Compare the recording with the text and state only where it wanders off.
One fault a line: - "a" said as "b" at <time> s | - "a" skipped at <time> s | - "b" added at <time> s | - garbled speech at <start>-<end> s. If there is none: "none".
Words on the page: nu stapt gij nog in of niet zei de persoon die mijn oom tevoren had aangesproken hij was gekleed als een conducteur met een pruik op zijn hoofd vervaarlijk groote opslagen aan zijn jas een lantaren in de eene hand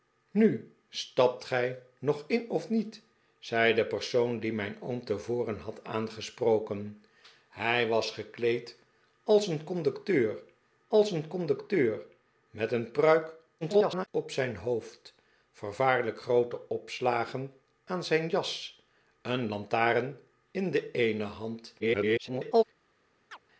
- "als een conducteur" added at 10.9 s
- garbled speech at 13.6-14.1 s
- garbled speech at 21.8-22.6 s